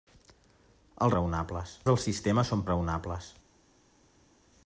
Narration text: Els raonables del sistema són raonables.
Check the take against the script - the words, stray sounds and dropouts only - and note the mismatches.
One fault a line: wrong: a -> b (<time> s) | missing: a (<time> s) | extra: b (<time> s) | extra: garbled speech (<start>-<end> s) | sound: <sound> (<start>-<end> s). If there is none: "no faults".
no faults